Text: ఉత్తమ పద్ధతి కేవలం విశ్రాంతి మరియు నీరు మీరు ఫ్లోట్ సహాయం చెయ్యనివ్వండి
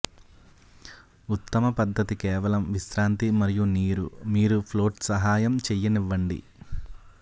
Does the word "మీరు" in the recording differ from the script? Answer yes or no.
no